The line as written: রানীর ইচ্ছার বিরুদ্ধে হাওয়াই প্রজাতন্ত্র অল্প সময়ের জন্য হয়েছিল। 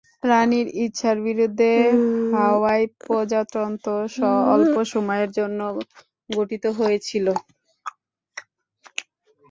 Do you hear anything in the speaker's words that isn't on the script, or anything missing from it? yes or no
yes